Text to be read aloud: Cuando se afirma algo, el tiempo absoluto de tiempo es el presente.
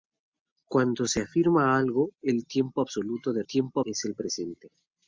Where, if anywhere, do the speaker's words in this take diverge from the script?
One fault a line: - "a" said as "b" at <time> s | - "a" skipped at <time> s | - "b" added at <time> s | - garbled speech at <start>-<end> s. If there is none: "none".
none